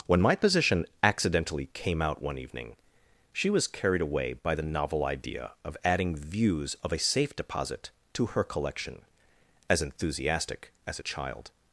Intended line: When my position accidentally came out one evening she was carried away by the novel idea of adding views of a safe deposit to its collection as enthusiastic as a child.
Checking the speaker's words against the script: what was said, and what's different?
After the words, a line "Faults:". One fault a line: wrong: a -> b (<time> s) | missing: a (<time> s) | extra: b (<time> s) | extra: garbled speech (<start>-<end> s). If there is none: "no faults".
When my position accidentally came out one evening she was carried away by the novel idea of adding views of a safe deposit to her collection as enthusiastic as a child.
Faults:
wrong: its -> her (8.3 s)